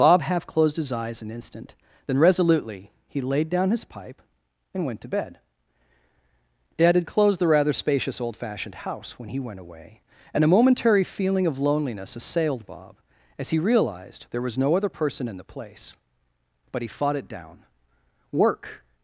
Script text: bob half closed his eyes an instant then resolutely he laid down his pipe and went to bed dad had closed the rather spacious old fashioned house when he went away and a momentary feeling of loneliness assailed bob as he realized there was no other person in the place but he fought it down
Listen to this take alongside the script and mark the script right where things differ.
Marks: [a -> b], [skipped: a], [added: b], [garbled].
bob half closed his eyes an instant then resolutely he laid down his pipe and went to bed dad had closed the rather spacious old fashioned house when he went away and a momentary feeling of loneliness assailed bob as he realized there was no other person in the place but he fought it down [added: work]